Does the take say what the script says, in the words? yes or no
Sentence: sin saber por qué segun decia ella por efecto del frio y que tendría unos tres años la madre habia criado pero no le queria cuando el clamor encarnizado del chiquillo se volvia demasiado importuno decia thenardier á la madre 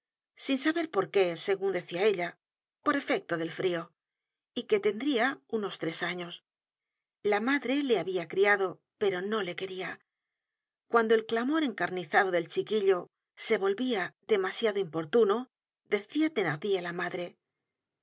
no